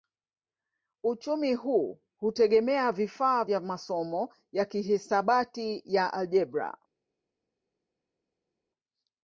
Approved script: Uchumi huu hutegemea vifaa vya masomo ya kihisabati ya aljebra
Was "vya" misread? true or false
false